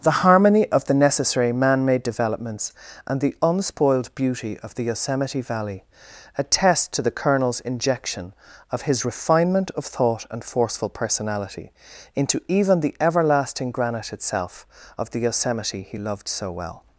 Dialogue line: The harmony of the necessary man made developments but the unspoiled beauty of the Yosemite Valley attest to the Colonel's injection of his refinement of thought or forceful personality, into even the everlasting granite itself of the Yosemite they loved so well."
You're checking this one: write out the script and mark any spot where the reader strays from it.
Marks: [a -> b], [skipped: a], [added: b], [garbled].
The harmony of the necessary man made developments [but -> and] the unspoiled beauty of the Yosemite Valley attest to the Colonel's injection of his refinement of thought [or -> and] forceful personality, into even the everlasting granite itself of the Yosemite [they -> he] loved so well."